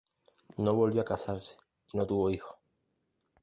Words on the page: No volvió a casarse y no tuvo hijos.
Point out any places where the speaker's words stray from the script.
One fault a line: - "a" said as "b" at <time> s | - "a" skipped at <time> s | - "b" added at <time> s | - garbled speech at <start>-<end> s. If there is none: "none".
none